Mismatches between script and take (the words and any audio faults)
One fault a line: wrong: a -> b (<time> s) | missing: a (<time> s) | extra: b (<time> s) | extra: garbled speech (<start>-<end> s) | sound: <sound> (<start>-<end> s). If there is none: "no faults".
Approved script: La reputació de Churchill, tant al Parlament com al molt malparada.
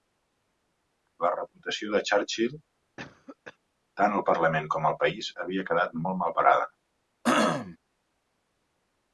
sound: cough (3.0-3.6 s)
extra: país havia quedat (5.0 s)
sound: throat clearing (7.2-7.8 s)